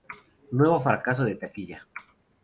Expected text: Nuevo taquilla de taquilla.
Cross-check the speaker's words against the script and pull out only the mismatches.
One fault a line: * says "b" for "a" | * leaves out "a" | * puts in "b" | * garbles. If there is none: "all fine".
* says "fracaso" for "taquilla"